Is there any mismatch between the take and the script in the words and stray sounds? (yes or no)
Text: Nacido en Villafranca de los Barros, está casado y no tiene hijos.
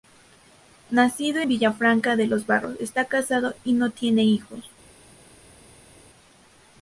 yes